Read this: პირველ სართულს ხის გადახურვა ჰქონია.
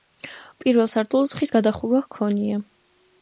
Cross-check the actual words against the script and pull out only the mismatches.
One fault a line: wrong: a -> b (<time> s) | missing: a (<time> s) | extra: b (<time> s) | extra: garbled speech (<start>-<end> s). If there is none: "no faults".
no faults